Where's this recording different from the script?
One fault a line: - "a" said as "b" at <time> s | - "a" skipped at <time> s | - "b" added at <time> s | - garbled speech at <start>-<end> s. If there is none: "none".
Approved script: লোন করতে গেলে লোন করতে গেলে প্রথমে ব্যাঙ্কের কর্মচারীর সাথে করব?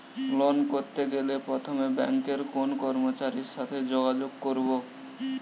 - "লোন করতে গেলে" skipped at 1.3 s
- "কোন" added at 2.5 s
- "যোগাযোগ" added at 3.9 s